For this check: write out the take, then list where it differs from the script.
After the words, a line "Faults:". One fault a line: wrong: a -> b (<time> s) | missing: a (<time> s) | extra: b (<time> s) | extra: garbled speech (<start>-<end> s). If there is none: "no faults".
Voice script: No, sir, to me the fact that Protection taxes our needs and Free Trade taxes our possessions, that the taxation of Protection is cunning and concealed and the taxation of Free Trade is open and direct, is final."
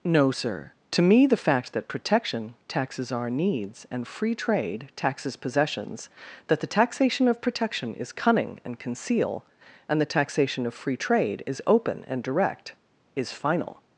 No, sir, to me the fact that Protection taxes our needs and Free Trade taxes possessions, that the taxation of Protection is cunning and conceal and the taxation of Free Trade is open and direct, is final."
Faults:
missing: our (5.3 s)
wrong: concealed -> conceal (8.8 s)